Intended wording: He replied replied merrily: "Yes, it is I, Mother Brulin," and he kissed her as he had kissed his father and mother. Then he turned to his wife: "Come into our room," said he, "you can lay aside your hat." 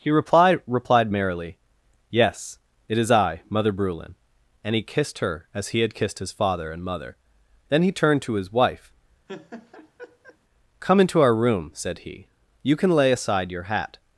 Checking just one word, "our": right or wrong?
right